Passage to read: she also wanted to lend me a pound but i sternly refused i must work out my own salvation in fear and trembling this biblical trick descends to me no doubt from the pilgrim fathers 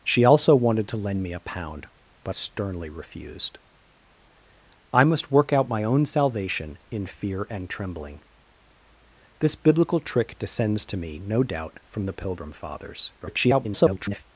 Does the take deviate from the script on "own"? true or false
false